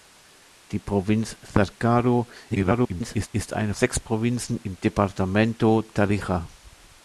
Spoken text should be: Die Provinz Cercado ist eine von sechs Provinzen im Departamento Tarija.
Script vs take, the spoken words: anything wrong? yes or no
yes